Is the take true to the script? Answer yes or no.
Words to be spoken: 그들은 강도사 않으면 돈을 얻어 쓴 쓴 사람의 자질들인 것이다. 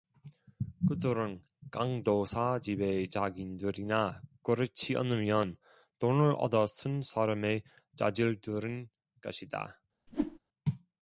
no